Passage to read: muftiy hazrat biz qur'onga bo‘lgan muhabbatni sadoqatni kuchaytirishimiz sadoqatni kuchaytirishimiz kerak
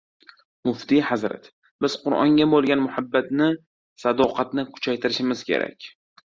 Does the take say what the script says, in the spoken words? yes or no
no